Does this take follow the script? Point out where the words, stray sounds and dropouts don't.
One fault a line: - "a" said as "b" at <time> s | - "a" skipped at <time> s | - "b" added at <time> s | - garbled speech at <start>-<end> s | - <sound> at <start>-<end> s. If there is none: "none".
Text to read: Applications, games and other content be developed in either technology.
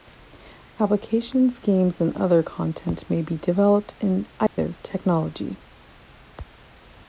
- "may" added at 3.1 s
- dropout at 4.5-4.6 s